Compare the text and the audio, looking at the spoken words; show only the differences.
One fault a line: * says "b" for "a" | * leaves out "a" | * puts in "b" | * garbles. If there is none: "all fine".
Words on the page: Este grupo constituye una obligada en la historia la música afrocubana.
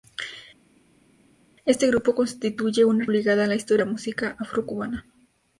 all fine